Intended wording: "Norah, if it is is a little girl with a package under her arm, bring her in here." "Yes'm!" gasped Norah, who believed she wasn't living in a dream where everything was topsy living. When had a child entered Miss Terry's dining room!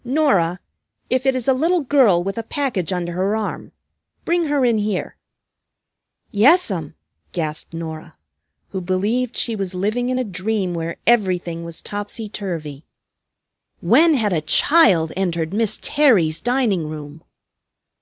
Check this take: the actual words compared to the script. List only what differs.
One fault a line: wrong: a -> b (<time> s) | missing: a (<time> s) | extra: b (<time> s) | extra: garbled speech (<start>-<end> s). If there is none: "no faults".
missing: is (1.5 s)
wrong: wasn't -> was (9.6 s)
wrong: living -> turvy (12.3 s)